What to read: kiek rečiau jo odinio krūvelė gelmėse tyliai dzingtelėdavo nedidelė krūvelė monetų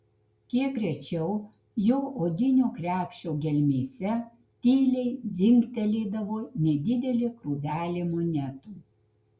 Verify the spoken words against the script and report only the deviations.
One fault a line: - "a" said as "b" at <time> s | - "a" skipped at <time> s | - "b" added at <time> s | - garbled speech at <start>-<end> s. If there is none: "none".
- "krūvelė" said as "krepšio" at 2.8 s